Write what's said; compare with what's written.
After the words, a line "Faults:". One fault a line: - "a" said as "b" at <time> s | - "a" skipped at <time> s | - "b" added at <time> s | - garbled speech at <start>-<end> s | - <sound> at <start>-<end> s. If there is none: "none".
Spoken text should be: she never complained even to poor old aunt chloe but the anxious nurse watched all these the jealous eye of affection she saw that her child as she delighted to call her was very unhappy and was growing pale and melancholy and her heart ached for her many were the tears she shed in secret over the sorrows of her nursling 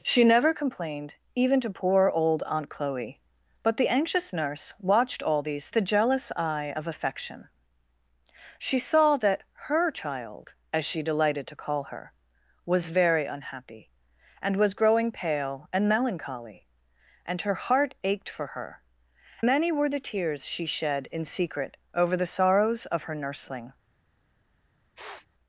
she never complained even to poor old aunt chloe but the anxious nurse watched all these the jealous eye of affection she saw that her child as she delighted to call her was very unhappy and was growing pale and melancholy and her heart ached for her many were the tears she shed in secret over the sorrows of her nursling
Faults:
- sniff at 25.0-25.3 s